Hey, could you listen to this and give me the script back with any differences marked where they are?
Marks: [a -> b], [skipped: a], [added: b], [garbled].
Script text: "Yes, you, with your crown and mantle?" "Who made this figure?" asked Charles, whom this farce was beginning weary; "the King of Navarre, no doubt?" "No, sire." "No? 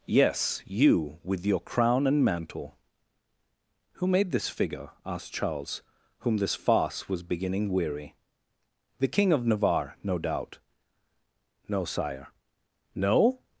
"Yes, you, with your crown and mantle?" "Who made this figure?" asked Charles, whom this farce was beginning weary; "the King of Navarre, no doubt?" "No, sire." "No?